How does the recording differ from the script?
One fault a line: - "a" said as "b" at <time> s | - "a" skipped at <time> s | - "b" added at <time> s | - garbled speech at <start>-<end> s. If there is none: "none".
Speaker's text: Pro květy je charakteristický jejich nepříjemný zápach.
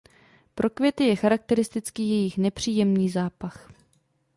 none